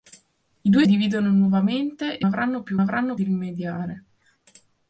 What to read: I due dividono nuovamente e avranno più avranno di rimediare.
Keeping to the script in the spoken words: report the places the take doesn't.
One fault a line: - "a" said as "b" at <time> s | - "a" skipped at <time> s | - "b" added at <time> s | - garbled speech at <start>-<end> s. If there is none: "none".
none